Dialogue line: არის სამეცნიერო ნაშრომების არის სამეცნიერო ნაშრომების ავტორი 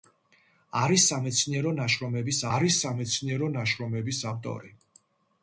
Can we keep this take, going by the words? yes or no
yes